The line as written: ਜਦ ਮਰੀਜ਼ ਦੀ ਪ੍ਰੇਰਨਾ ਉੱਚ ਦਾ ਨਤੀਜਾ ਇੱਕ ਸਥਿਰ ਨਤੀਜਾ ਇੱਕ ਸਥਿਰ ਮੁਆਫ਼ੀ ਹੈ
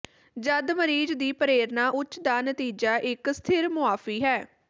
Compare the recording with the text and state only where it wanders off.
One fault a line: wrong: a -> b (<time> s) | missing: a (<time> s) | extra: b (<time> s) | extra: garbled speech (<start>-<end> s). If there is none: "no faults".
missing: ਨਤੀਜਾ ਇੱਕ ਸਥਿਰ (3.7 s)